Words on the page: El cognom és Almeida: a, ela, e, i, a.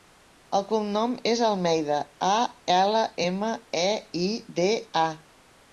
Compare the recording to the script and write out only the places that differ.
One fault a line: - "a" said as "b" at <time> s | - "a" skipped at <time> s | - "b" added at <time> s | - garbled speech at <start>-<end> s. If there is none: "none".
- "ema" added at 3.3 s
- "de" added at 4.6 s